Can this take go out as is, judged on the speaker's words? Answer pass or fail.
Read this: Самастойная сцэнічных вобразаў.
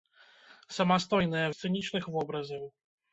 pass